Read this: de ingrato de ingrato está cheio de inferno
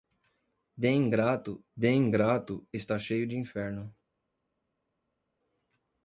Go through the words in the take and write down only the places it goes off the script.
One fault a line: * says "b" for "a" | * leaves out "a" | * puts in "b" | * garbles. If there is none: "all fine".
all fine